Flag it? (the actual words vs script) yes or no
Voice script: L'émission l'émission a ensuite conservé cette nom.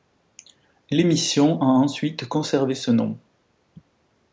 yes